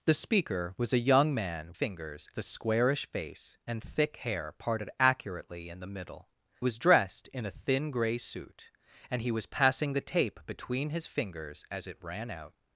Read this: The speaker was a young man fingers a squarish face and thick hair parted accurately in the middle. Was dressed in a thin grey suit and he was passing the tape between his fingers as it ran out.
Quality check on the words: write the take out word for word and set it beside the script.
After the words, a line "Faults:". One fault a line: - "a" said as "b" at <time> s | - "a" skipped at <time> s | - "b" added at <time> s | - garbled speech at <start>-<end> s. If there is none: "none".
The speaker was a young man fingers a squarish face and thick hair parted accurately in the middle. Was dressed in a thin grey suit and he was passing the tape between his fingers as it ran out.
Faults:
none